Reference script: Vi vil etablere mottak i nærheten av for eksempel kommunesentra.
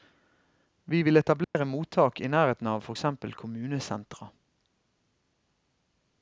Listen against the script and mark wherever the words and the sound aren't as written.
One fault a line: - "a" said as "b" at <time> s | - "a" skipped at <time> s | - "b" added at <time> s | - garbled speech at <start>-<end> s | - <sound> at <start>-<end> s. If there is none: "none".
- dropout at 1.4-1.6 s